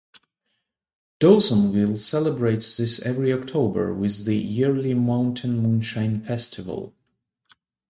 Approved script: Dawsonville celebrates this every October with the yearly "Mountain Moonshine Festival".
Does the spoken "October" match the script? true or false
true